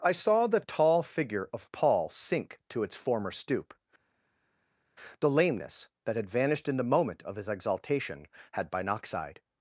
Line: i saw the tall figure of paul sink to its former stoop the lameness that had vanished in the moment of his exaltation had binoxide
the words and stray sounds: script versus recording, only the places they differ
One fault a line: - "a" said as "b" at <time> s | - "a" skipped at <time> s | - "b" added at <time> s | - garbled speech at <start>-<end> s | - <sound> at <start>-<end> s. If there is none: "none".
none